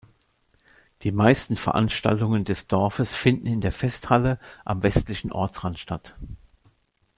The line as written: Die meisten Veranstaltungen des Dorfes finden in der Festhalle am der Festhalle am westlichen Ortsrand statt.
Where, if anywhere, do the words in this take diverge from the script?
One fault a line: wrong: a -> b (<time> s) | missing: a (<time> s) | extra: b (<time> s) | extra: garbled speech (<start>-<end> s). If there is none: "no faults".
missing: der Festhalle am (4.8 s)